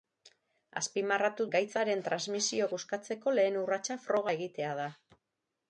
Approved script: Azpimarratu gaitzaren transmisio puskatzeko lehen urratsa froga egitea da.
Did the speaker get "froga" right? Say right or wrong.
right